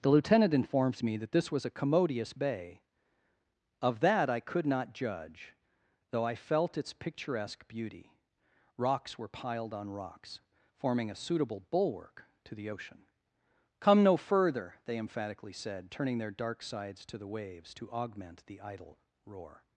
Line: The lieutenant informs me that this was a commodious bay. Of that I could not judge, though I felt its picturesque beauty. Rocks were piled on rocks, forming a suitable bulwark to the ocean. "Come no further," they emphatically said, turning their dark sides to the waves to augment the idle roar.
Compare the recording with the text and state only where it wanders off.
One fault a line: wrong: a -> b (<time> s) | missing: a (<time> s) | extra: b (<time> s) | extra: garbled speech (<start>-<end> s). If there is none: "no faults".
no faults